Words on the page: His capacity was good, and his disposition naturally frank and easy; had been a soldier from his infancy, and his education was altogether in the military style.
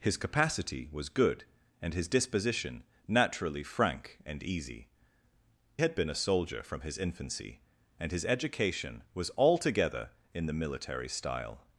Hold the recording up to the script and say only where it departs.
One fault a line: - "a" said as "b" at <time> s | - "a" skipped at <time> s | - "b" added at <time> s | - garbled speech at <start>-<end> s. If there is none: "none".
none